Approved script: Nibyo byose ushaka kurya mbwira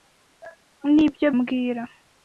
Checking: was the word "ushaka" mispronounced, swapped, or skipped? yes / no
yes